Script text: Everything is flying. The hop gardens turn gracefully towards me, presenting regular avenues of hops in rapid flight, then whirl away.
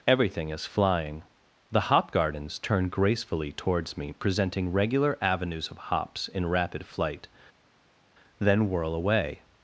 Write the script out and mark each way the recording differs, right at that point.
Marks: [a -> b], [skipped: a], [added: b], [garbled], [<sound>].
Everything is flying. The hop gardens turn gracefully towards me, presenting regular avenues of hops in rapid flight, then whirl away.